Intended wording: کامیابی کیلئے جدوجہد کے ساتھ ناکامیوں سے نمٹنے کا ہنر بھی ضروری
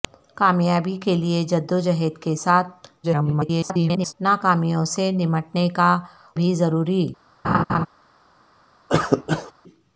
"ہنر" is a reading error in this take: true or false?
true